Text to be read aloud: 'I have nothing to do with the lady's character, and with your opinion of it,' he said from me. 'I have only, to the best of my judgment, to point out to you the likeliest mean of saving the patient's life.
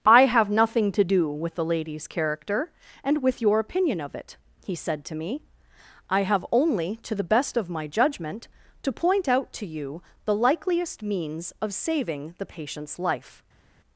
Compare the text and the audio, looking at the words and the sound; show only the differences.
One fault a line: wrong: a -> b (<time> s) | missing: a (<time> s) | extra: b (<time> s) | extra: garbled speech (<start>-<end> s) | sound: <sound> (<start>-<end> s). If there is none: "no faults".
wrong: from -> to (5.0 s)
wrong: mean -> means (11.0 s)